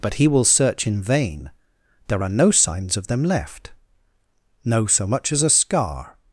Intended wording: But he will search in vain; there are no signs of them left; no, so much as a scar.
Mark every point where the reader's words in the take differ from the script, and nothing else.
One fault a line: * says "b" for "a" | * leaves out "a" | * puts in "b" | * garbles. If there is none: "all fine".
all fine